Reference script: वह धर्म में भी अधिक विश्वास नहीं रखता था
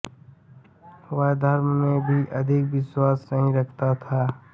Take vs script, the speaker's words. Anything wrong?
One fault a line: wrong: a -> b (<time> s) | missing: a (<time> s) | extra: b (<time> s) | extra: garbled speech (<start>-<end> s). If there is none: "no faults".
no faults